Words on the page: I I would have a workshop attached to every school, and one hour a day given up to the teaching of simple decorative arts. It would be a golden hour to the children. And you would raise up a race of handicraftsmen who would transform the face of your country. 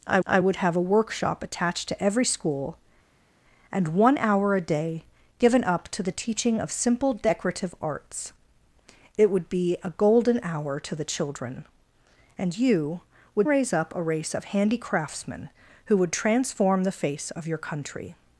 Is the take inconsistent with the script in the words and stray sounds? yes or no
no